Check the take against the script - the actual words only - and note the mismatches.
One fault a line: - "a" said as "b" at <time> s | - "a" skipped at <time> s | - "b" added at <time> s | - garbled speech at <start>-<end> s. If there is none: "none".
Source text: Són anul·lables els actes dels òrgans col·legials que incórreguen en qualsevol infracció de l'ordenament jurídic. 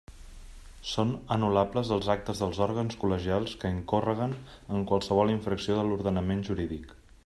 none